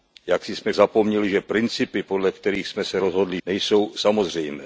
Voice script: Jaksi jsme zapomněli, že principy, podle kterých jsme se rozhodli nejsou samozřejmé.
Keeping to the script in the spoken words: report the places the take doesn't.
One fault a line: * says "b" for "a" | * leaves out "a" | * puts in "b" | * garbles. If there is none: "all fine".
all fine